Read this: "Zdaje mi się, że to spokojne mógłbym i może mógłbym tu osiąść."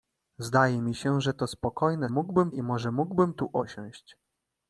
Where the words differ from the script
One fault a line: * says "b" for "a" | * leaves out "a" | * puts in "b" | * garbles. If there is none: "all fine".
all fine